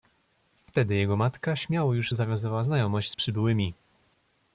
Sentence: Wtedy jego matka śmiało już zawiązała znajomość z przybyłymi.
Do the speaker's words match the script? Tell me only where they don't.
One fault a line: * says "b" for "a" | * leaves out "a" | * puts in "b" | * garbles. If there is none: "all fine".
all fine